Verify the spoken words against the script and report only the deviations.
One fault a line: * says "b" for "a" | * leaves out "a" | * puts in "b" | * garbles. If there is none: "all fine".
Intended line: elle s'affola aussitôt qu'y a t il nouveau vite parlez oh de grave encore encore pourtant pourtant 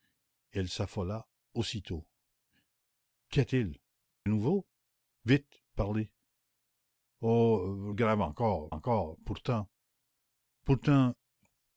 all fine